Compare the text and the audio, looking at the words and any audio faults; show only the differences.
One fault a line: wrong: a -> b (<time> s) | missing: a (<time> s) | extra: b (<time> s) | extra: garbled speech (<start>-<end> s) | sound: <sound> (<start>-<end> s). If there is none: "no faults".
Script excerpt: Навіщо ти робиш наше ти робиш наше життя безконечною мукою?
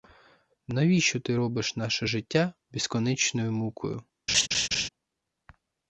missing: ти робиш наше (2.1 s)
sound: laugh (4.3-4.9 s)